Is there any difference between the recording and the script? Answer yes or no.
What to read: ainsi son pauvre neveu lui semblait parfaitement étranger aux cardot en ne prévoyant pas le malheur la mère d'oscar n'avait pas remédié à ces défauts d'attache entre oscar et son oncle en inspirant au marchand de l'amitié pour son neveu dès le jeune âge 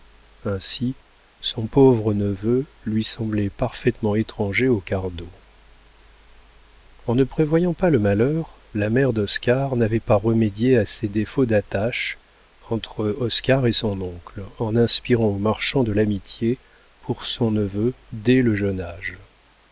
no